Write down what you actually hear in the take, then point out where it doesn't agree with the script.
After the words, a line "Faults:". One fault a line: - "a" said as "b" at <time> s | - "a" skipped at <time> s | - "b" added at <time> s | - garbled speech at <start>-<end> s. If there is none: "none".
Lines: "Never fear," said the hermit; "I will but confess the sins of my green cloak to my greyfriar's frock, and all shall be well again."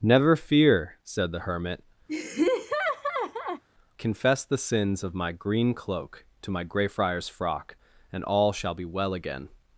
"Never fear," said the hermit; "confess the sins of my green cloak to my greyfriar's frock, and all shall be well again."
Faults:
- "I will but" skipped at 1.8 s